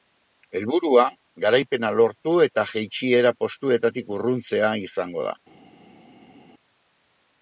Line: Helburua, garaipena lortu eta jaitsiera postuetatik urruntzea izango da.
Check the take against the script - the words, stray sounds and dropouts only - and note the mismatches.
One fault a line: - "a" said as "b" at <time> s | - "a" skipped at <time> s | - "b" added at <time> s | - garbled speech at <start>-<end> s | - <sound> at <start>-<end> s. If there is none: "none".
none